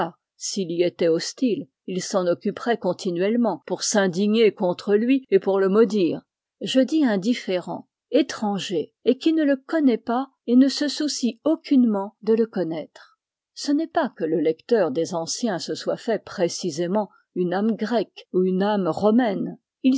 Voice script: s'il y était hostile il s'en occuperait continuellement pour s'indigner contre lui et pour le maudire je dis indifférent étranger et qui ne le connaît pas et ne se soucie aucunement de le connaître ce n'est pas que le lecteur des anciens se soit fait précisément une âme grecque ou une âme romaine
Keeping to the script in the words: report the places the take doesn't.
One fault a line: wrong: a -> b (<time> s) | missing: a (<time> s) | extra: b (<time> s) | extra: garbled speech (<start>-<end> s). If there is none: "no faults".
no faults